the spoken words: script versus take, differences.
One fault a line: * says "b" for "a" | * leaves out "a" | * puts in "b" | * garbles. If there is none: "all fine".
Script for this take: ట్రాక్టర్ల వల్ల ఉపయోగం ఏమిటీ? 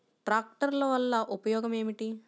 all fine